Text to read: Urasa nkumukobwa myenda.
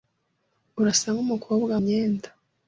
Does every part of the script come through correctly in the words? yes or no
yes